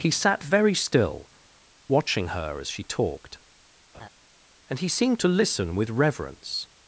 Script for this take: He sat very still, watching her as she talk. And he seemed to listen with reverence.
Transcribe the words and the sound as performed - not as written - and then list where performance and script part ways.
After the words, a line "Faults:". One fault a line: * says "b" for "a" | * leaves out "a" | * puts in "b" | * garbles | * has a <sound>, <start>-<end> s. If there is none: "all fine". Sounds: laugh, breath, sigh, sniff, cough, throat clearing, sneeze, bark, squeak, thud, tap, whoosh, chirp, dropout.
He sat very still, watching her as she talked. And he seemed to listen with reverence.
Faults:
* says "talked" for "talk"
* has a laugh, 3.9-4.1 s